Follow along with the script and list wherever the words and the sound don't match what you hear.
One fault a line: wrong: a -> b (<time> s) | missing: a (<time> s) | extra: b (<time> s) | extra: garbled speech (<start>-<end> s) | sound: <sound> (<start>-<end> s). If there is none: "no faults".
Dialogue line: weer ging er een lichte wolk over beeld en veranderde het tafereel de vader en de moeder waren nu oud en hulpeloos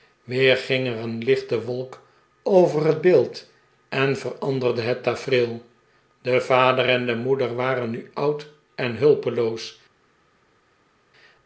extra: het (2.9 s)